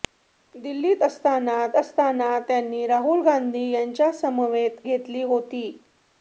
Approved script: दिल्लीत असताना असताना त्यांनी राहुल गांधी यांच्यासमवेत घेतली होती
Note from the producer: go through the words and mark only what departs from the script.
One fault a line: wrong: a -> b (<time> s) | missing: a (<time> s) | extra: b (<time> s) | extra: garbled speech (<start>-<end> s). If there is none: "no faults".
no faults